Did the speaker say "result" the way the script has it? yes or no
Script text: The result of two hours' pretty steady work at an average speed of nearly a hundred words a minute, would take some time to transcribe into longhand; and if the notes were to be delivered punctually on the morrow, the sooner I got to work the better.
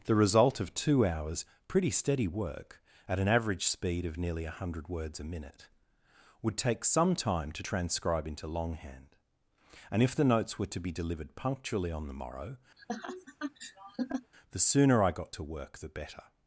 yes